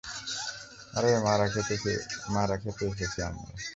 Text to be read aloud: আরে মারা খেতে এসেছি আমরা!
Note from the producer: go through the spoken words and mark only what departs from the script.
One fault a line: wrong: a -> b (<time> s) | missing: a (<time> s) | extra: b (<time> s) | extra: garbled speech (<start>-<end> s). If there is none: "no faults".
no faults